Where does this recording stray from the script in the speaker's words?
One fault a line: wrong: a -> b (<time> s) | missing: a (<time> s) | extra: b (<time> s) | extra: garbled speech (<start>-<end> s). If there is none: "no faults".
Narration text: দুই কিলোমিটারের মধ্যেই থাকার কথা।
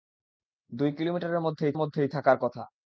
extra: মধ্যেই (1.8 s)